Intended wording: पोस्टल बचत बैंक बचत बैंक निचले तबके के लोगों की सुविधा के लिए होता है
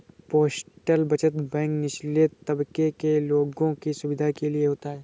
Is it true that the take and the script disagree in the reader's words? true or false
true